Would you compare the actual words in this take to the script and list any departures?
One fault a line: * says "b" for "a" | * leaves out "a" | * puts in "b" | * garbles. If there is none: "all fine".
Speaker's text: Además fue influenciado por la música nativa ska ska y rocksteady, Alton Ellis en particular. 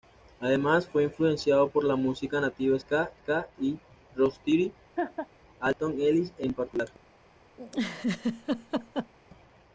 all fine